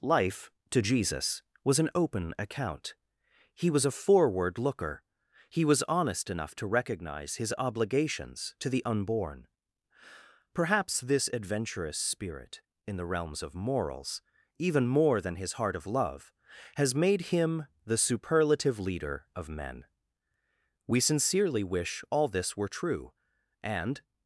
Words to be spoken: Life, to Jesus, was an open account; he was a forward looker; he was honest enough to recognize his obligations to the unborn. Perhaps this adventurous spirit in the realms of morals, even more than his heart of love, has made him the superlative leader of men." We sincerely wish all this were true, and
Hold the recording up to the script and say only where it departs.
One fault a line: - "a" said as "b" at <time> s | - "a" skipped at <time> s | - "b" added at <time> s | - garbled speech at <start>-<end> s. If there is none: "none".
none